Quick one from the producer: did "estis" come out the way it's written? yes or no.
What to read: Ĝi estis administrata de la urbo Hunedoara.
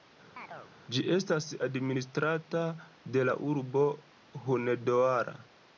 no